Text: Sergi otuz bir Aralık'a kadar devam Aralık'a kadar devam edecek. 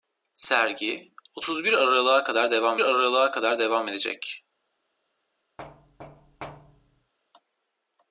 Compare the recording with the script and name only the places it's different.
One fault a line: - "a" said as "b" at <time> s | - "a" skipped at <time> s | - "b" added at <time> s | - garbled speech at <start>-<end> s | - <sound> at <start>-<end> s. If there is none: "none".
- thud at 5.6-7.1 s